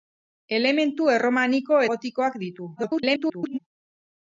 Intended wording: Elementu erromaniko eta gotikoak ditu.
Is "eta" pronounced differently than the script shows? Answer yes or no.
yes